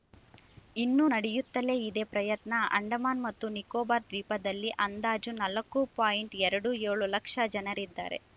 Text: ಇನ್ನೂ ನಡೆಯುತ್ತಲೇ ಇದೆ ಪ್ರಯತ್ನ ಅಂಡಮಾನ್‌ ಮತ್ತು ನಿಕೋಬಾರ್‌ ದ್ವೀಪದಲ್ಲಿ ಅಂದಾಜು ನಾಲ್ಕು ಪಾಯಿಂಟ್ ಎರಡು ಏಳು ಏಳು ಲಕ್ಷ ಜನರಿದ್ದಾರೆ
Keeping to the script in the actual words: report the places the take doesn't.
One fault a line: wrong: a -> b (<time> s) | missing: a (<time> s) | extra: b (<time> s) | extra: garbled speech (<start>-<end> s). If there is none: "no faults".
missing: ಏಳು (7.1 s)